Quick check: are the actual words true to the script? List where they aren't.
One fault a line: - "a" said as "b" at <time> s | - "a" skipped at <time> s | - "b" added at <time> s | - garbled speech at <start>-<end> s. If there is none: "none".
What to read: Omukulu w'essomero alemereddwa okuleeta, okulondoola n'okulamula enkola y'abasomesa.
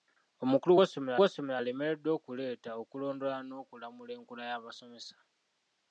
- "w'essomero" added at 1.2 s